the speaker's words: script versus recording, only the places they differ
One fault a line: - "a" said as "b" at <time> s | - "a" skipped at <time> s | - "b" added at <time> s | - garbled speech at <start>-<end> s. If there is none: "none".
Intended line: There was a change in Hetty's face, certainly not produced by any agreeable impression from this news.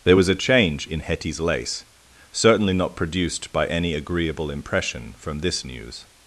- "face" said as "lace" at 1.4 s